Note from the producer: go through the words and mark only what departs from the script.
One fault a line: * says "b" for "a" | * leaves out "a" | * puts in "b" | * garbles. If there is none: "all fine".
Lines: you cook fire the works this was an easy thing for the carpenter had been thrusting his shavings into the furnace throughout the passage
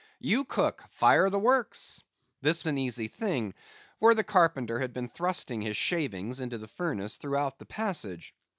* leaves out "was"